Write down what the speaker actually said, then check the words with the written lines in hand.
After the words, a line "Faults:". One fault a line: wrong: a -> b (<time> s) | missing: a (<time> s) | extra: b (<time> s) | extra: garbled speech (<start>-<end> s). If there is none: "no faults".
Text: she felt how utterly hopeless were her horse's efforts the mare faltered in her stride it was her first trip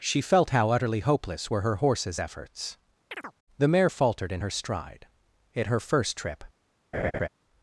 she felt how utterly hopeless were her horse's efforts the mare faltered in her stride it her first trip
Faults:
missing: was (5.7 s)